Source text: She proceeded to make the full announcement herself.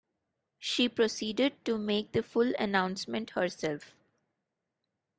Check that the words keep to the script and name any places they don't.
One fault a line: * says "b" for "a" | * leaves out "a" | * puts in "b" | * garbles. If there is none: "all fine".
all fine